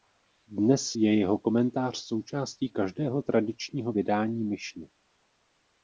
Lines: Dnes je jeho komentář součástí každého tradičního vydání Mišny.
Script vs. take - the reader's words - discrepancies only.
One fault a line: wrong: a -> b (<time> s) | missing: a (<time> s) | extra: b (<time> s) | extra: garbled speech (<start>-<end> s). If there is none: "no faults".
no faults